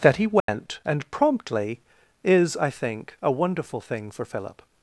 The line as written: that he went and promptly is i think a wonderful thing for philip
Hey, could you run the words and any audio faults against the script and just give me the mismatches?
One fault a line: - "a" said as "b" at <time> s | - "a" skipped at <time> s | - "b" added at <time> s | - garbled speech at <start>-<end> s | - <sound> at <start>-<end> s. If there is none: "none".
- dropout at 0.4-0.5 s